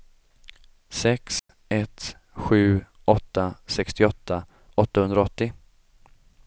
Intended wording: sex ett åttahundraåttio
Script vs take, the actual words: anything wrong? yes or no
yes